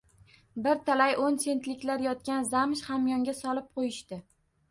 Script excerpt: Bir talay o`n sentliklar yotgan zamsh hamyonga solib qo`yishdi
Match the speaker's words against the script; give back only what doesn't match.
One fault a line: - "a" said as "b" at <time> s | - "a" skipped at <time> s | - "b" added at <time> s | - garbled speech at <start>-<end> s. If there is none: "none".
none